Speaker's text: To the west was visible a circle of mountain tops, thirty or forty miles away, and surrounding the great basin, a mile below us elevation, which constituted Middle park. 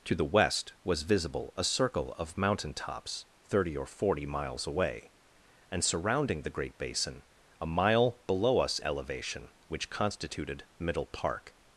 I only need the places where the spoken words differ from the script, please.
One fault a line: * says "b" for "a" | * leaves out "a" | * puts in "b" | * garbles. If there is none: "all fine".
all fine